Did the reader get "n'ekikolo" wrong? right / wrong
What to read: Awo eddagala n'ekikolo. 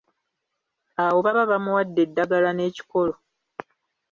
right